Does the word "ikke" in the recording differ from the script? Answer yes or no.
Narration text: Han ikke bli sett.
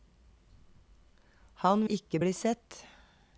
no